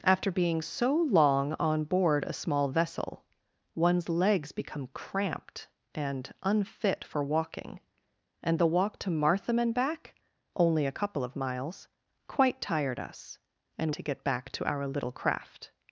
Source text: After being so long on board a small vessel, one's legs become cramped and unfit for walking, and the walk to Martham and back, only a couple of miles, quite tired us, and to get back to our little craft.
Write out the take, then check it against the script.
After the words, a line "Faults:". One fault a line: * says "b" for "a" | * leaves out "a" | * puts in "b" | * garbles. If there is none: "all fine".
After being so long on board a small vessel, one's legs become cramped and unfit for walking, and the walk to Martham and back, only a couple of miles, quite tired us, and to get back to our little craft.
Faults:
all fine